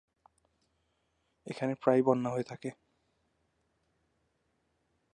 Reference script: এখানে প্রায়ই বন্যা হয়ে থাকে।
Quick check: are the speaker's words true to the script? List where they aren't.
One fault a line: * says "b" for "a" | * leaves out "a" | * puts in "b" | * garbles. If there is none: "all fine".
all fine